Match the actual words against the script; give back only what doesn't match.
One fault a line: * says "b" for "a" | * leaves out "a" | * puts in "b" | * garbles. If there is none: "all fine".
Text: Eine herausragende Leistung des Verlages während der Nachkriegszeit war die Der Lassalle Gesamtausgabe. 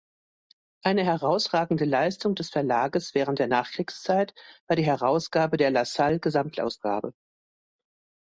* puts in "Herausgabe"